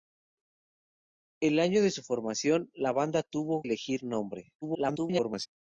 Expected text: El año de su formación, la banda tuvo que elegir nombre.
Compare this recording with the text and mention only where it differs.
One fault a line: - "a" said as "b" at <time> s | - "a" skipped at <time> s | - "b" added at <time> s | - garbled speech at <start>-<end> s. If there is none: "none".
- "que" skipped at 3.7 s
- garbled speech at 4.6-5.5 s